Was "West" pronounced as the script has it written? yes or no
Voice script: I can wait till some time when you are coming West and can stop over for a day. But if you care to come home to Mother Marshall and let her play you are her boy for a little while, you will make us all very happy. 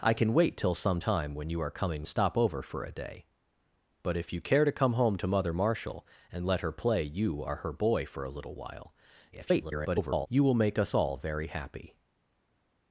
no